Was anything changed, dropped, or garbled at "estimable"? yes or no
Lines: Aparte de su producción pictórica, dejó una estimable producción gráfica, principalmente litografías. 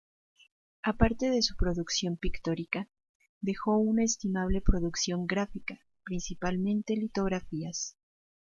no